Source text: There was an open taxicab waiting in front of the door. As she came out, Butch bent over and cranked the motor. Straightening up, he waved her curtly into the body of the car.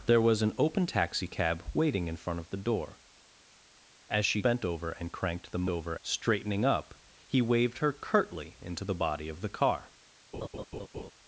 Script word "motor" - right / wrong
wrong